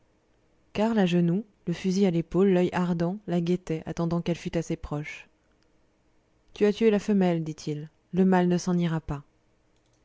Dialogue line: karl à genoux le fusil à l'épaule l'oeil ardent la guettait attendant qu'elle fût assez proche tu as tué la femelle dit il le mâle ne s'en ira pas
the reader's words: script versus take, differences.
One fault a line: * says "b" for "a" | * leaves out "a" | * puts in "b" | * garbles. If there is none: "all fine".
all fine